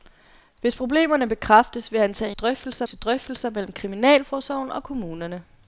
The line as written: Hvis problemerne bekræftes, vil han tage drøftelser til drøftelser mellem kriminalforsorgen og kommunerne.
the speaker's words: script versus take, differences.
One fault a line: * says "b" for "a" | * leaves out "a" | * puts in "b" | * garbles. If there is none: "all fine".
all fine